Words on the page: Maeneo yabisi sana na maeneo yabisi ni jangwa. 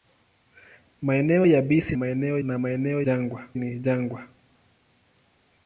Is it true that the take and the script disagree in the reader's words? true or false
true